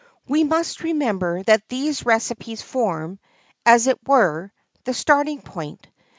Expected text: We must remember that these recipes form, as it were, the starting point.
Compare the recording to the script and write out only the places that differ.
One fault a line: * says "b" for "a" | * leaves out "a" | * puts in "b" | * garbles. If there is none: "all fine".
all fine